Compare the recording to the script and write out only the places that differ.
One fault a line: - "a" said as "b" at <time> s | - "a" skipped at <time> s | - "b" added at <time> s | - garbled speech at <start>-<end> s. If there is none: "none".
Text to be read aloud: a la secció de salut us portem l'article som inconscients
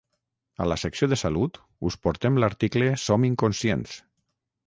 none